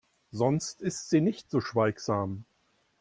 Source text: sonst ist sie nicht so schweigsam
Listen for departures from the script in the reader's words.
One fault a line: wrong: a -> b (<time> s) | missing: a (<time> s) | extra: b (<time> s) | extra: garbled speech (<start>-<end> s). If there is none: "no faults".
no faults